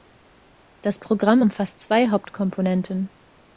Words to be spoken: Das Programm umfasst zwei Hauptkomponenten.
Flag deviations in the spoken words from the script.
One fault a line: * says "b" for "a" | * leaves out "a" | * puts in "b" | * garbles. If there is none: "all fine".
all fine